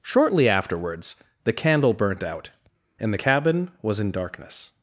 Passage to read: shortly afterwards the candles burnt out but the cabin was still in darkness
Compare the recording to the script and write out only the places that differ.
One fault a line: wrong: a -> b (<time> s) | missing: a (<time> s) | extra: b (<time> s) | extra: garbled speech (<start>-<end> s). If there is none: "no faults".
wrong: candles -> candle (1.5 s)
wrong: but -> and (3.0 s)
missing: still (4.0 s)